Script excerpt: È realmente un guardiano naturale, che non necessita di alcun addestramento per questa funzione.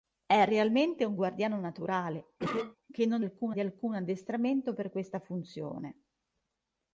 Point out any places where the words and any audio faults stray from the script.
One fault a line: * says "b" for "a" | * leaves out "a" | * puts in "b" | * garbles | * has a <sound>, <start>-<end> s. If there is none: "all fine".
* has a cough, 2.4-2.8 s
* says "alcun" for "necessita"